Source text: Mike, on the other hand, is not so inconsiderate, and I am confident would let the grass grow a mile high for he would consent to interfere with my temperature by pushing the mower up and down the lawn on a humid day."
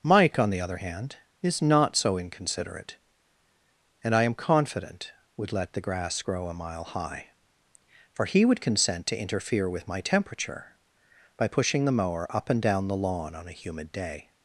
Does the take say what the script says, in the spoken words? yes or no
yes